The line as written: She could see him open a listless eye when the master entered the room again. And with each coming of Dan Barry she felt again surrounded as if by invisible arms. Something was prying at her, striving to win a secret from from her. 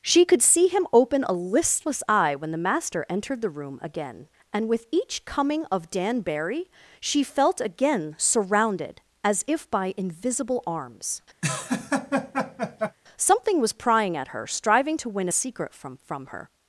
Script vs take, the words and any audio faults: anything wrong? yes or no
yes